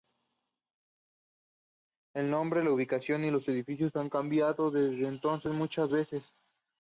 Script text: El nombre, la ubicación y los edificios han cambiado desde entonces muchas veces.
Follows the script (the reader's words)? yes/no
yes